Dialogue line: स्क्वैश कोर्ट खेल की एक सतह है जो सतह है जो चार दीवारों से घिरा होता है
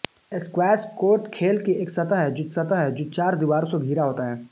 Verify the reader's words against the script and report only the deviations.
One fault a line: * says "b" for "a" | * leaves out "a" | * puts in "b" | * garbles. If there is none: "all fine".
all fine